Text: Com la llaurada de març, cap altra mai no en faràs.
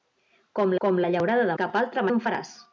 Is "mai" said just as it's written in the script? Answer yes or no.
no